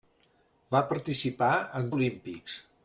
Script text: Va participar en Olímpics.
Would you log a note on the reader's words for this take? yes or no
no